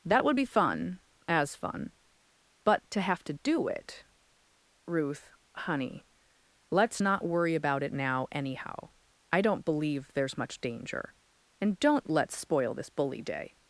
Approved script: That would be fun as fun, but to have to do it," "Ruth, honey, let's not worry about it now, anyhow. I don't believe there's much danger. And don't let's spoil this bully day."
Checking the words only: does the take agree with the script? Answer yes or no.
yes